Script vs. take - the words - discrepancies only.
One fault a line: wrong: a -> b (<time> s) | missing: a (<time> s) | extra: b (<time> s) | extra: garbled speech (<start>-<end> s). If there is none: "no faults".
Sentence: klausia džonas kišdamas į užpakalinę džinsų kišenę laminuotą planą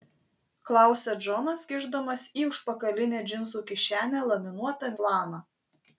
no faults